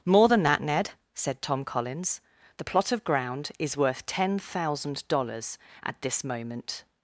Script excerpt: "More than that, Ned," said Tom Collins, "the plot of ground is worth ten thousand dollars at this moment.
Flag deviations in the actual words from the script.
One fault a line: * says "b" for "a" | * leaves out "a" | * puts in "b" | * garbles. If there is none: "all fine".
all fine